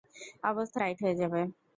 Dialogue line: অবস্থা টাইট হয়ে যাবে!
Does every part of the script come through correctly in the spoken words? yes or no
yes